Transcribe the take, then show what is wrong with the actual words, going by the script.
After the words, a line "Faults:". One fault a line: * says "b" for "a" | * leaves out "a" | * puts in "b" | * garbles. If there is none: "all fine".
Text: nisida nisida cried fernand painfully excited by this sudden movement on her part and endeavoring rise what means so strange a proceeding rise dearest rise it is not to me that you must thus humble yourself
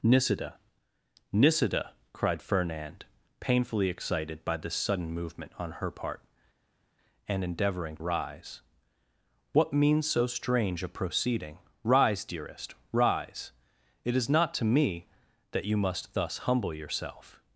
nisida nisida cried fernand painfully excited by this sudden movement on her part and endeavoring rise what means so strange a proceeding rise dearest rise it is not to me that you must thus humble yourself
Faults:
all fine